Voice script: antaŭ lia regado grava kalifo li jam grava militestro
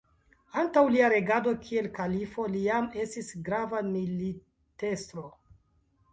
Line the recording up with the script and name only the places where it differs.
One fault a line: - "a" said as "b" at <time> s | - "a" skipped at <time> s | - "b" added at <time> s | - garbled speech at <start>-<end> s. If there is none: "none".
- "grava" said as "kiel" at 1.7 s
- "estis" added at 3.0 s